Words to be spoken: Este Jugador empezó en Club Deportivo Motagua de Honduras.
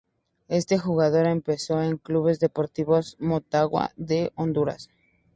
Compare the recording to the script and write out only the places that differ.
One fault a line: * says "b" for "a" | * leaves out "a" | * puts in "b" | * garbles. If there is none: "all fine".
all fine